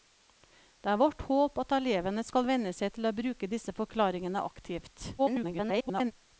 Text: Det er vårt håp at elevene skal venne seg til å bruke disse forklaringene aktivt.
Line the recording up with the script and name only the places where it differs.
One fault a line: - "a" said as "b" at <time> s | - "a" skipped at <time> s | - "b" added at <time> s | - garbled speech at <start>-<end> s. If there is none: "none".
- garbled speech at 5.2-6.1 s